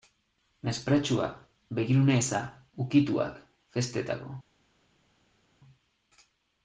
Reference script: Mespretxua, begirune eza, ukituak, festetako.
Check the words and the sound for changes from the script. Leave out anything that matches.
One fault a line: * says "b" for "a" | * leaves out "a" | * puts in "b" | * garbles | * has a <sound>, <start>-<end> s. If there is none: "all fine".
all fine